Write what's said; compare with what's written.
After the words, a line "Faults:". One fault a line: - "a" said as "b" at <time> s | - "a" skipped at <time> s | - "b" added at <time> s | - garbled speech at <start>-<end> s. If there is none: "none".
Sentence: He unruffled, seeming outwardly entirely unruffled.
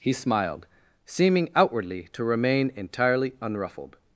He smiled, seeming outwardly to remain entirely unruffled.
Faults:
- "unruffled" said as "smiled" at 0.1 s
- "to remain" added at 2.1 s